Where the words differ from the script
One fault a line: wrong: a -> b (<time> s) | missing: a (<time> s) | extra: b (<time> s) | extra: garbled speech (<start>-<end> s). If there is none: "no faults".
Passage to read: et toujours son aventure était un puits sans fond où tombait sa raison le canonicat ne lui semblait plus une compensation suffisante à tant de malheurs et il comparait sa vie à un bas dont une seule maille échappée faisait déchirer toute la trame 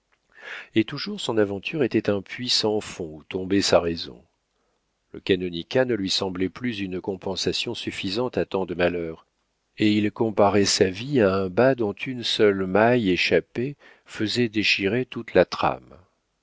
no faults